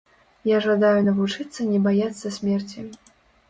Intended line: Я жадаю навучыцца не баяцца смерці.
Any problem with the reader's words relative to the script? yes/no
no